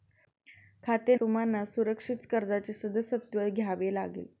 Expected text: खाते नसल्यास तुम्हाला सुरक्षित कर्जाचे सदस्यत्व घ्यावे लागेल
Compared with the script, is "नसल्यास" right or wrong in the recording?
wrong